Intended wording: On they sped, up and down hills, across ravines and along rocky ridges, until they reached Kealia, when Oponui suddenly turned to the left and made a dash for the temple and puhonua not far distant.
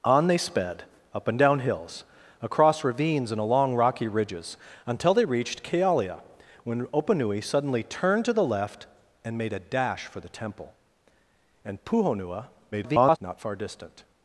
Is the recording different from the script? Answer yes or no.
yes